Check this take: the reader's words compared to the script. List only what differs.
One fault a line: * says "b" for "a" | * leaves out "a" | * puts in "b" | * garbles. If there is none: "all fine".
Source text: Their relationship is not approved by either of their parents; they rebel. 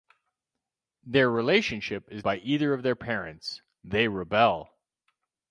* leaves out "not approved"